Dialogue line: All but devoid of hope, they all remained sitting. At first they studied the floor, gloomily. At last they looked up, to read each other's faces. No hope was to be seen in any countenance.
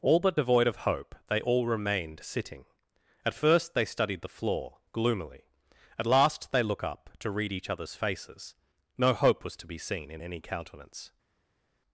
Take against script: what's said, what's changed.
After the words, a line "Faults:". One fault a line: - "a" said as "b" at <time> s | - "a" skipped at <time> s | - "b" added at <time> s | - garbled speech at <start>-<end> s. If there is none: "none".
All but devoid of hope, they all remained sitting. At first they studied the floor, gloomily. At last they look up, to read each other's faces. No hope was to be seen in any countenance.
Faults:
- "looked" said as "look" at 6.6 s